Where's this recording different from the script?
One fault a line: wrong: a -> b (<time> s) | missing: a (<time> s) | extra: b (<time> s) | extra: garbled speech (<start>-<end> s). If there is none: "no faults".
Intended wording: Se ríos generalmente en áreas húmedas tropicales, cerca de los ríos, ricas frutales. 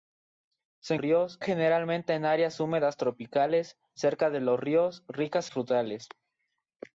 no faults